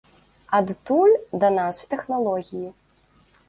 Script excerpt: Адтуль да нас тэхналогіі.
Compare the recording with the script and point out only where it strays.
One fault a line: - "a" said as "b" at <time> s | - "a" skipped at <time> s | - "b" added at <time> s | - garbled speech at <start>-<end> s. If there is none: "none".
none